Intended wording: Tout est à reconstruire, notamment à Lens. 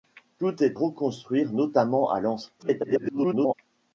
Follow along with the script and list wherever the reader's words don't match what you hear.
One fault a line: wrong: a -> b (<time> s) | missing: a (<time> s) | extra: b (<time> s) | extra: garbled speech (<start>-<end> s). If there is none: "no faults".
missing: à (0.8 s)
extra: garbled speech (2.6-3.5 s)